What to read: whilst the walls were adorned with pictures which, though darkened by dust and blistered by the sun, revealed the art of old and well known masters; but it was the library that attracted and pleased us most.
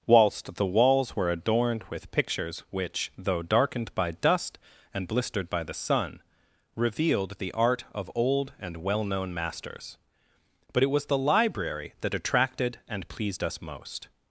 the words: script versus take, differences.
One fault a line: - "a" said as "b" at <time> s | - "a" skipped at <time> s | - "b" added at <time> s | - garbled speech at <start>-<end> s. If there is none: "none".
none